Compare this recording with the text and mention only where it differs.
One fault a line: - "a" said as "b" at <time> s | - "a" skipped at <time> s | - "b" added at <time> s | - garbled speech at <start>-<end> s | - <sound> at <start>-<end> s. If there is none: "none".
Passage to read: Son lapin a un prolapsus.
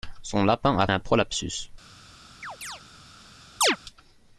- chirp at 2.4-2.8 s
- chirp at 3.6-3.8 s